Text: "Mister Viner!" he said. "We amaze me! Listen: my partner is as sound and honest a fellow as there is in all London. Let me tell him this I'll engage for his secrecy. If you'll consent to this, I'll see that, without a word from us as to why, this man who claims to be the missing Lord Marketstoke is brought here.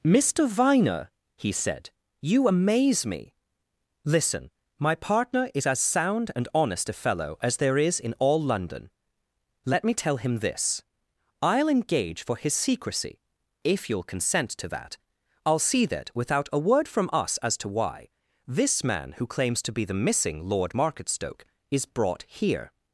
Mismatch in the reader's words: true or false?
true